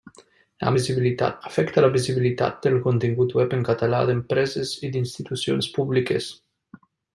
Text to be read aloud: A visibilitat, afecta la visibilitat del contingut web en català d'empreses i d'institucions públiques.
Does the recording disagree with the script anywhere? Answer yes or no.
no